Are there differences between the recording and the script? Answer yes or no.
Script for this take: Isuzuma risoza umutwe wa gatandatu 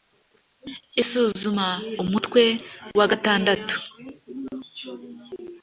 yes